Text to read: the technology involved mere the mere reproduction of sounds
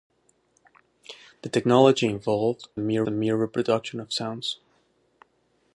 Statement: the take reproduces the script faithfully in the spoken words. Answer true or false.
true